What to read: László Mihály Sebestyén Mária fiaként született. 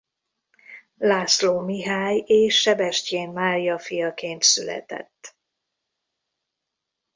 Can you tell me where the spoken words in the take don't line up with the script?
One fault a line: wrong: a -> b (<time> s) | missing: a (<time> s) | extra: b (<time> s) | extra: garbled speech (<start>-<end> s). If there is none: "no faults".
extra: és (2.2 s)